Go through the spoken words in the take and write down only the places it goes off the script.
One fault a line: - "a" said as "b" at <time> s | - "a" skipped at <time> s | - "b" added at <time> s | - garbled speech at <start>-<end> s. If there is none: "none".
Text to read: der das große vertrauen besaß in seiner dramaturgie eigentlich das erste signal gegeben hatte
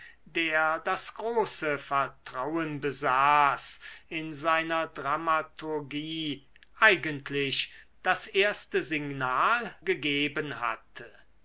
none